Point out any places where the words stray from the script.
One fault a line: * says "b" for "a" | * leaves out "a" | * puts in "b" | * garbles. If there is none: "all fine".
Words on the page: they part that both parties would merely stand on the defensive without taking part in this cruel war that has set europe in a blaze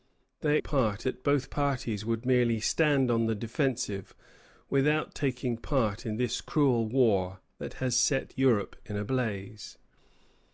all fine